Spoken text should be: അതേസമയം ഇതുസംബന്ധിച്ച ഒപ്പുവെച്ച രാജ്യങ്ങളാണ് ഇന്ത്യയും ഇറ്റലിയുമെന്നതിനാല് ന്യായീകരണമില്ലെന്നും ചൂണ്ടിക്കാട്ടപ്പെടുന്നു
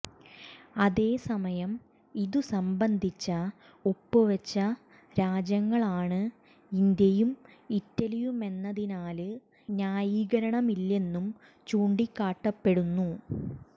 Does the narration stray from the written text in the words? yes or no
no